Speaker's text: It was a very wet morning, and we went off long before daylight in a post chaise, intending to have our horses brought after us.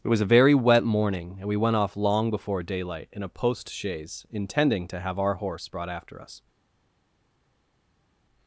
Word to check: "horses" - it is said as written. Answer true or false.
false